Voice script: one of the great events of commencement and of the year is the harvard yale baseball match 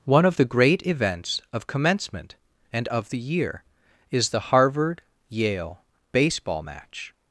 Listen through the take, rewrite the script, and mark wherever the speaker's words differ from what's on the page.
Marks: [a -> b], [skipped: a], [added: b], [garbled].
one of the great events of commencement and of the year is the harvard yale baseball match